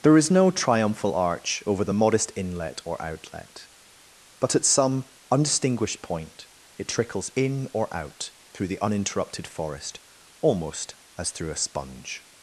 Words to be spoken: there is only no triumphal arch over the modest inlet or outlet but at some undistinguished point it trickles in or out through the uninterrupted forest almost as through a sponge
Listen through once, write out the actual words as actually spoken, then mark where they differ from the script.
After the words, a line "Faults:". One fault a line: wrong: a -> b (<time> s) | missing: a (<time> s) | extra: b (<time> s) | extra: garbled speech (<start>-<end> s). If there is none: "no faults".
there is no triumphal arch over the modest inlet or outlet but at some undistinguished point it trickles in or out through the uninterrupted forest almost as through a sponge
Faults:
missing: only (0.3 s)